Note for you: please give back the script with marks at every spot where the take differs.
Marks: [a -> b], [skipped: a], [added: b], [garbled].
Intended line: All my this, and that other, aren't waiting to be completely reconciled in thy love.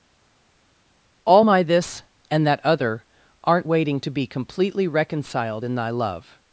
All my this, and that other, aren't waiting to be completely reconciled in thy love.